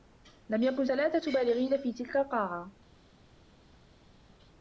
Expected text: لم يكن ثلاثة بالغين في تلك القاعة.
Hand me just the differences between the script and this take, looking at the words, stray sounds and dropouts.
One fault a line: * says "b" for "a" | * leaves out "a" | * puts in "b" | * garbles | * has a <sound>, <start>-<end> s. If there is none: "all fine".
all fine